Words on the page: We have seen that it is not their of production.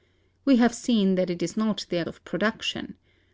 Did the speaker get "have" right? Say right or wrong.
right